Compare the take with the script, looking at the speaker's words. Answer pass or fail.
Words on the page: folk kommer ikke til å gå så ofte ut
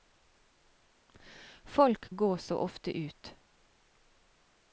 fail